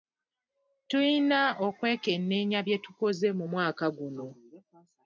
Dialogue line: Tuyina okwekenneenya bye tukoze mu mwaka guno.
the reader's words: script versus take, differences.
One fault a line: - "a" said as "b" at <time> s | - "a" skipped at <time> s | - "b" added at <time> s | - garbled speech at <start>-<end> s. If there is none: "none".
none